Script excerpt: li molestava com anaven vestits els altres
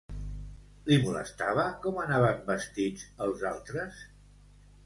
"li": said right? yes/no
yes